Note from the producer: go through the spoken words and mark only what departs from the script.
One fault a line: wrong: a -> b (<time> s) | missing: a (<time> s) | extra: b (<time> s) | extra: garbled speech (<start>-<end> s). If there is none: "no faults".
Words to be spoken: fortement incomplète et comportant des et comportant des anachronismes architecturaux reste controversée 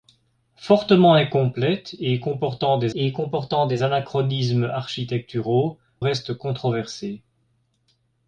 no faults